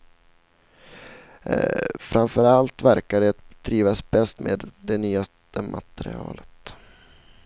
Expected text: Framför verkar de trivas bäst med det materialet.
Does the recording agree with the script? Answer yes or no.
no